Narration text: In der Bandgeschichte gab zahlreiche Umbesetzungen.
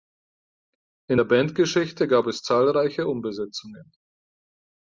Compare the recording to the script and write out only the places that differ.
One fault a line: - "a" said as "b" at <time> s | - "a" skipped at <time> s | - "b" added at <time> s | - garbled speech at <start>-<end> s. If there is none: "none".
- "es" added at 2.3 s